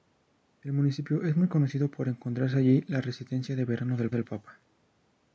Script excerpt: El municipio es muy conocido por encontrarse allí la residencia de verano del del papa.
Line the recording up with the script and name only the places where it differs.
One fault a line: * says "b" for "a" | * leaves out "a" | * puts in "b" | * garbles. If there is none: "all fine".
all fine